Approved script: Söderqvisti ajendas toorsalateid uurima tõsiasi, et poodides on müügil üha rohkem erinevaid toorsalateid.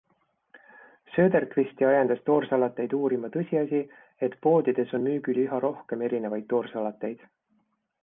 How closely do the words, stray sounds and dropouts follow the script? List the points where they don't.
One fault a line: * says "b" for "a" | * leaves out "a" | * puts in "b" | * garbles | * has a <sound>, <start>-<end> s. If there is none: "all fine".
all fine